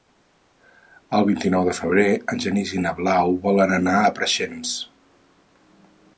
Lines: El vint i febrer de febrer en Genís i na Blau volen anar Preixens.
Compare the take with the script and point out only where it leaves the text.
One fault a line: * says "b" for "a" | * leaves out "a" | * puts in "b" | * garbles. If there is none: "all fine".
* says "nou" for "febrer"
* puts in "a"